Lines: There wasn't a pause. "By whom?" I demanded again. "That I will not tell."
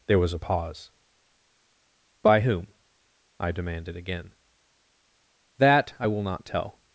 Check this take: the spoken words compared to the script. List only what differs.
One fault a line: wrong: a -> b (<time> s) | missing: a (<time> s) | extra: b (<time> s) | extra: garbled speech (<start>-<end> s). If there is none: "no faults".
wrong: wasn't -> was (0.2 s)